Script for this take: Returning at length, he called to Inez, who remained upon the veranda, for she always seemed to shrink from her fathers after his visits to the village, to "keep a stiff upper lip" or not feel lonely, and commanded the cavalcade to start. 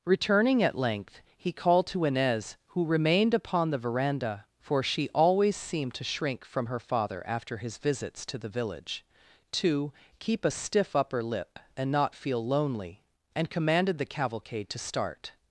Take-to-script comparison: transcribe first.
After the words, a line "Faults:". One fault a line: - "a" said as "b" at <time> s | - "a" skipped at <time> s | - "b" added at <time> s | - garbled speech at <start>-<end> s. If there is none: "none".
Returning at length, he called to Inez, who remained upon the veranda, for she always seemed to shrink from her father after his visits to the village, to "keep a stiff upper lip" and not feel lonely, and commanded the cavalcade to start.
Faults:
- "fathers" said as "father" at 6.8 s
- "or" said as "and" at 11.8 s